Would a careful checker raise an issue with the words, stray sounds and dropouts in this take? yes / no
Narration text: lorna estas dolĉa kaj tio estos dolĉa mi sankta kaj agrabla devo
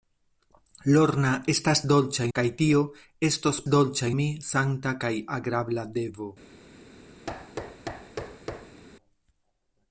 yes